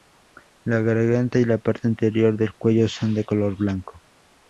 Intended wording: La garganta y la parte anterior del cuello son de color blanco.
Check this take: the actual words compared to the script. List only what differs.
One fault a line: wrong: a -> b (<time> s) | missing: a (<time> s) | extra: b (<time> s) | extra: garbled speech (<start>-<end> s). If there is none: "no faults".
no faults